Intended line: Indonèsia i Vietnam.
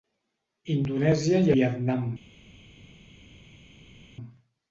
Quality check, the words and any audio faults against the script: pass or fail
pass